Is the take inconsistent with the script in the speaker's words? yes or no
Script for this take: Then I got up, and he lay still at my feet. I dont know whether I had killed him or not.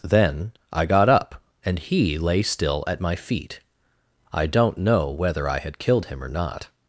no